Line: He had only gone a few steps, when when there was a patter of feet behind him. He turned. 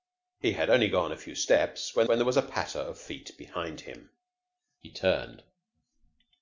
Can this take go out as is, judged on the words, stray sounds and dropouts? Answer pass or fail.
pass